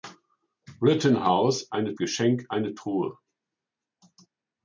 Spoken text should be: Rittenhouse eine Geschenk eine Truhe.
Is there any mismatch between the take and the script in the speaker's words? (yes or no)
no